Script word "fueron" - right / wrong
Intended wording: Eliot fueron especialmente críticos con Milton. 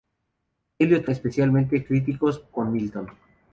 wrong